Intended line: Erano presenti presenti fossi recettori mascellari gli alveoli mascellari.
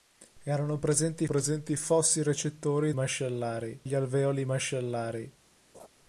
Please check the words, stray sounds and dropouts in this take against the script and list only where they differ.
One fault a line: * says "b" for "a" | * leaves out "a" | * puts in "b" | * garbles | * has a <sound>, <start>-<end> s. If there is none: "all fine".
* has a laugh, 5.7-5.9 s